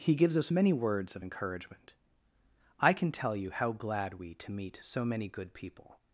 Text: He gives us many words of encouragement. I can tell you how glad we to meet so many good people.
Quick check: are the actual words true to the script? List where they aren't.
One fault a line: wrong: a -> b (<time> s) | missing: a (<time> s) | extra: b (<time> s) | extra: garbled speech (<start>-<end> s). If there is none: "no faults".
no faults